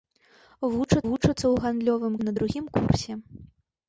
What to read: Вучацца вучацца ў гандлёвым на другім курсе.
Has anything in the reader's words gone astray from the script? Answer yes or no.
no